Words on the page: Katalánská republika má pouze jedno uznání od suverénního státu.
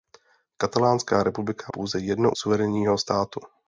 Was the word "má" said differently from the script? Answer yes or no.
yes